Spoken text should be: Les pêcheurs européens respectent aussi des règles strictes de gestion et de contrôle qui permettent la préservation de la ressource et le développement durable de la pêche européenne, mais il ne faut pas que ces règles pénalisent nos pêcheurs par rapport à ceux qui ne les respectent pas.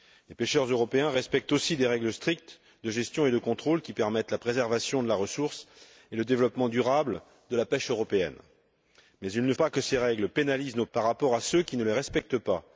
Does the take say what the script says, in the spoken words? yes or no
no